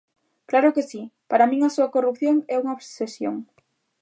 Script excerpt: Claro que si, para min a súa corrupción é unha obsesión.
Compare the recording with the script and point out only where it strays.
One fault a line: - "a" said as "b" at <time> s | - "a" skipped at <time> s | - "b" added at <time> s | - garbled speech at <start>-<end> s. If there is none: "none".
none